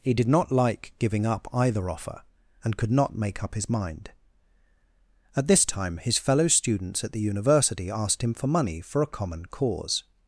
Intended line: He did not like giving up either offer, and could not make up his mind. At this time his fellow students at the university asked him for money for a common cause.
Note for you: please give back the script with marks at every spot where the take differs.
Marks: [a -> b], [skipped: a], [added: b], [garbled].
He did not like giving up either offer, and could not make up his mind. At this time his fellow students at the university asked him for money for a common cause.